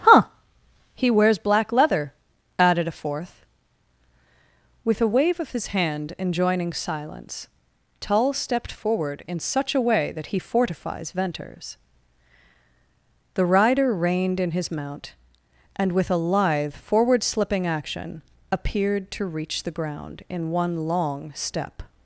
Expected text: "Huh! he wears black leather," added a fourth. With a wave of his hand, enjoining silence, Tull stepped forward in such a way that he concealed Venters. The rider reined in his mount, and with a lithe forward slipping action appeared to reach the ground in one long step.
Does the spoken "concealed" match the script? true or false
false